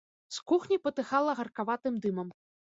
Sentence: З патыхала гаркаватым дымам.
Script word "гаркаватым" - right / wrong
right